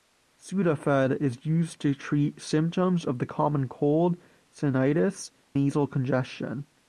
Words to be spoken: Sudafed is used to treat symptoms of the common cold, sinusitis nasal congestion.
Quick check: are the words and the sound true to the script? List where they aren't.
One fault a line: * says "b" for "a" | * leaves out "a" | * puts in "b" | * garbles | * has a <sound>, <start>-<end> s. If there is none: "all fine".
all fine